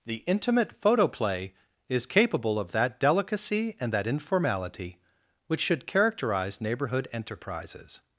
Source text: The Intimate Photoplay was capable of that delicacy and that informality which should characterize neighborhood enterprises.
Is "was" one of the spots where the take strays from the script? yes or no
yes